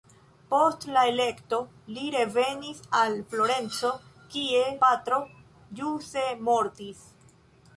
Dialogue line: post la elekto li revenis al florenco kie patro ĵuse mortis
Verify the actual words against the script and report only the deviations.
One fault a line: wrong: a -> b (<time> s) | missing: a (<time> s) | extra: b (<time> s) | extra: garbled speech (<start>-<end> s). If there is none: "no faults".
no faults